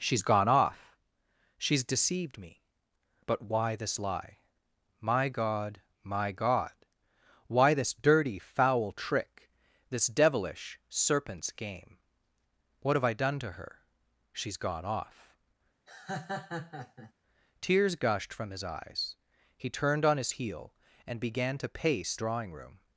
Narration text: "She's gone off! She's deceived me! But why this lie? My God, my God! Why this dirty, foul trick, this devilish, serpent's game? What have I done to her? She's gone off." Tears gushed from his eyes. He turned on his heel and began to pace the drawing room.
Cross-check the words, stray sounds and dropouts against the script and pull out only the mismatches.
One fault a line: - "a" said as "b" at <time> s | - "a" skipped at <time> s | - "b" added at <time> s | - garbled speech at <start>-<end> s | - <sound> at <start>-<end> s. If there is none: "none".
- laugh at 15.9-17.1 s
- "the" skipped at 22.2 s